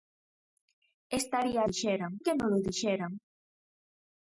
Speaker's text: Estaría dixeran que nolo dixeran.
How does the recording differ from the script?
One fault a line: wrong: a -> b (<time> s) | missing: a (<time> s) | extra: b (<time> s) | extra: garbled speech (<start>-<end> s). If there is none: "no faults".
no faults